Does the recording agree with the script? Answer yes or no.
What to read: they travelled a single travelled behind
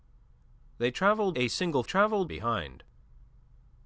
yes